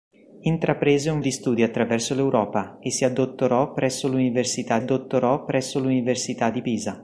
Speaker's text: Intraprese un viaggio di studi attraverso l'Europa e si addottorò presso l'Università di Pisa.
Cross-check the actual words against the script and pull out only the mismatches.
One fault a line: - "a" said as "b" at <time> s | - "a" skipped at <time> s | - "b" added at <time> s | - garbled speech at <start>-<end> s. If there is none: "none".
- "viaggio" skipped at 1.2 s
- "addottorò presso l'Università" added at 4.8 s